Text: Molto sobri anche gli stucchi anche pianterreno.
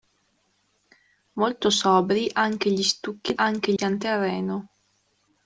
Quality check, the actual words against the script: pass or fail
pass